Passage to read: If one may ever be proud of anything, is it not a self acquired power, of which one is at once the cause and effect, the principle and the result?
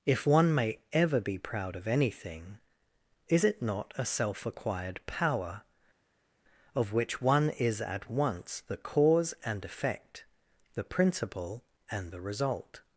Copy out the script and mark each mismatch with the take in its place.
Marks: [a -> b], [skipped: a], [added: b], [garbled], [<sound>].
If one may ever be proud of anything, is it not a self acquired power, of which one is at once the cause and effect, the principle and the result?